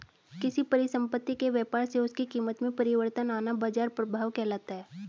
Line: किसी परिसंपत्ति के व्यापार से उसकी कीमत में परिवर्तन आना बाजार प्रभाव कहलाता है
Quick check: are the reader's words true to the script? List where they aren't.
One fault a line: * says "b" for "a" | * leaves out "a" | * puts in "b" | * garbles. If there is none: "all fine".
all fine